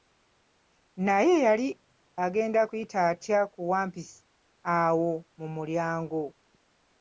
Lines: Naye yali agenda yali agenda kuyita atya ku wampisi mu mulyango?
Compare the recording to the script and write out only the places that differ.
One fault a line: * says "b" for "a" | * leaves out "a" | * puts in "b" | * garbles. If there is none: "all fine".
* leaves out "yali agenda"
* puts in "awo"